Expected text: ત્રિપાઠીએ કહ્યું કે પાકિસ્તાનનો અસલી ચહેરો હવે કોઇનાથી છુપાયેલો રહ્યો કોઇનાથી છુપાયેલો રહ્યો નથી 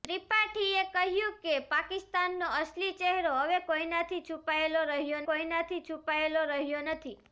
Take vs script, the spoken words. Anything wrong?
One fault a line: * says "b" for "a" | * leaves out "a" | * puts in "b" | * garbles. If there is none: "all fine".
all fine